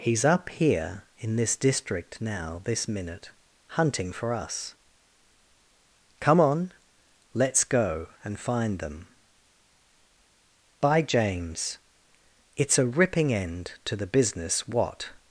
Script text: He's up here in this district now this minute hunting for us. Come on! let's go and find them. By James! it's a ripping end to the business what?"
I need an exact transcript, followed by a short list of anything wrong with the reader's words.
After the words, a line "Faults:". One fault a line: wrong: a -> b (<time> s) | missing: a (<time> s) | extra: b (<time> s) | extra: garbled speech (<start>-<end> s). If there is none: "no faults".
He's up here in this district now this minute hunting for us. Come on! let's go and find them. By James! it's a ripping end to the business what?"
Faults:
no faults